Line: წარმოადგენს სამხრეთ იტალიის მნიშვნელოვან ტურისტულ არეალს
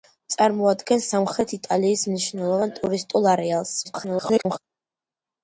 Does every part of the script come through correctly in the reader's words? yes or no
no